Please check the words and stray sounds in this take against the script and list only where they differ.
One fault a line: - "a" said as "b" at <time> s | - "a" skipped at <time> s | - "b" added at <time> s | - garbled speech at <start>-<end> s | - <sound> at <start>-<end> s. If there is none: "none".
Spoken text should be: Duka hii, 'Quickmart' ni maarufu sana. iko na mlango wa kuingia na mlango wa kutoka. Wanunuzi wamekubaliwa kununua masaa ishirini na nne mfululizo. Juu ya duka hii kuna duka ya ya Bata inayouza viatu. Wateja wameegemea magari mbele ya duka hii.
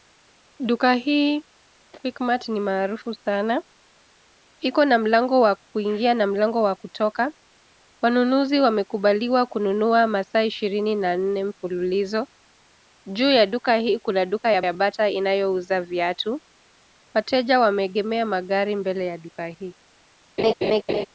- laugh at 20.4-21.1 s